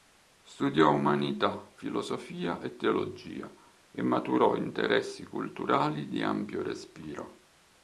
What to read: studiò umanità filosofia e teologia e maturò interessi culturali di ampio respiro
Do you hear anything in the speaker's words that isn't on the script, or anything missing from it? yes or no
no